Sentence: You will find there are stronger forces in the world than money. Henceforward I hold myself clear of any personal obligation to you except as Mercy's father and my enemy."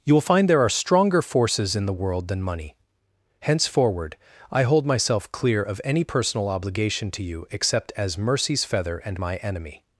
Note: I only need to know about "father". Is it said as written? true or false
false